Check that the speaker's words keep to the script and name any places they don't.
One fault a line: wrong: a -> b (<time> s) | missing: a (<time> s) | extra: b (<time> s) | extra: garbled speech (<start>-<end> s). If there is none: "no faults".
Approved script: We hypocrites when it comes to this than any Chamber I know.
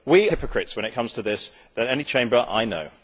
no faults